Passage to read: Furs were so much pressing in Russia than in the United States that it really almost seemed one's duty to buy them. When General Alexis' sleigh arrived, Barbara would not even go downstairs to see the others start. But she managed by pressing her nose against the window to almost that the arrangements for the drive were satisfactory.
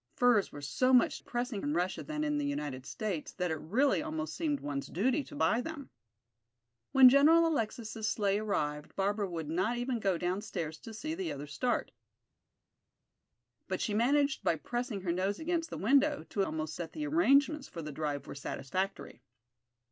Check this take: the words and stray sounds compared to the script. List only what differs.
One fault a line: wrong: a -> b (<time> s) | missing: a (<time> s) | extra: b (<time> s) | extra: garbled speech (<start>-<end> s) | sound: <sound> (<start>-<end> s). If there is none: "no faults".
no faults